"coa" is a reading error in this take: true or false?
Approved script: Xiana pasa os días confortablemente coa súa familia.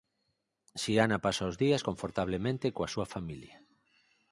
false